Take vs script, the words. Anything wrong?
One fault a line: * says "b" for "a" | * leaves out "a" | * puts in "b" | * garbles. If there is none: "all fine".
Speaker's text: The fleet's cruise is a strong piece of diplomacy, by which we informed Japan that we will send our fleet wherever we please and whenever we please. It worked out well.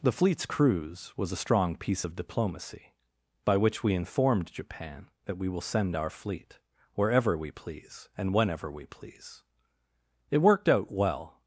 * says "was" for "is"